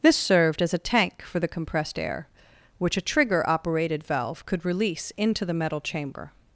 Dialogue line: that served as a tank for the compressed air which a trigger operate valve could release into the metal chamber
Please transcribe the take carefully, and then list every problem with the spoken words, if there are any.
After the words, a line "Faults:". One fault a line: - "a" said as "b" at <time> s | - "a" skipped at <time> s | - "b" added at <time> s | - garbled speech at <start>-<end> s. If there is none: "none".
this served as a tank for the compressed air which a trigger operated valve could release into the metal chamber
Faults:
- "that" said as "this" at 0.0 s
- "operate" said as "operated" at 3.5 s